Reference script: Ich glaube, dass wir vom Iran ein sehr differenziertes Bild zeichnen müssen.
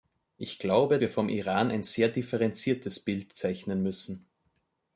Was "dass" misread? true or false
true